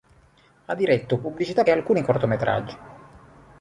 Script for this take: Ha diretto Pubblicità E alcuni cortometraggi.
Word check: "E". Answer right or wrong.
right